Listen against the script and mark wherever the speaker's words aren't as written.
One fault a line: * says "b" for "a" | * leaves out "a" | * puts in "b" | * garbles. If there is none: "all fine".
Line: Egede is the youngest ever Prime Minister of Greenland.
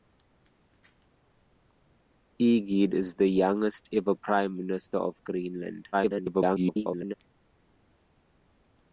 * garbles